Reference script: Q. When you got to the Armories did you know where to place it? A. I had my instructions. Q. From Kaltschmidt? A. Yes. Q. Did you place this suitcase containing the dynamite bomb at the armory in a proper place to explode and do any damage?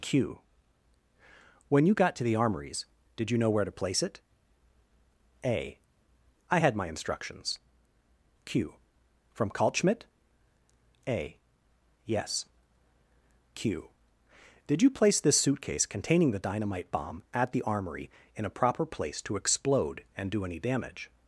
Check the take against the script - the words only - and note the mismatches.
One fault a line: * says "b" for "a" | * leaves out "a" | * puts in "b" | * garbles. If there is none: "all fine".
all fine